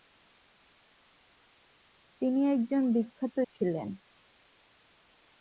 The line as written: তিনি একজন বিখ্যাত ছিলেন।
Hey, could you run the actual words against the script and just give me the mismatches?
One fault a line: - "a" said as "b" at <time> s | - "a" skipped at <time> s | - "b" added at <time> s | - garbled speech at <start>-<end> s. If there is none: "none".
none